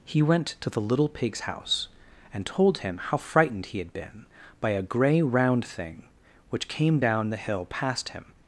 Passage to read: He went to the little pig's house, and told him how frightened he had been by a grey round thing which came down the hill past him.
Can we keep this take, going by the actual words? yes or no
yes